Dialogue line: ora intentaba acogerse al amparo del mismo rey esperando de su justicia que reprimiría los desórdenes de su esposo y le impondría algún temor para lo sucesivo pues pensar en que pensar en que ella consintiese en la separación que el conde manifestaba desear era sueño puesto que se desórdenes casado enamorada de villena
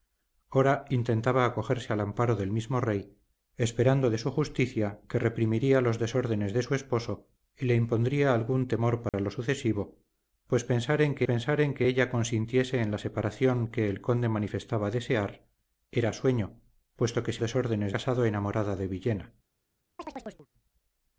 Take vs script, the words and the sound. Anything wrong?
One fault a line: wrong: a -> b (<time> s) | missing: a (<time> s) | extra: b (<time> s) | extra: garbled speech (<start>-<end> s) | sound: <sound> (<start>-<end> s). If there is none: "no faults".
sound: dropout (9.1-9.1 s)
sound: chirp (20.0-20.5 s)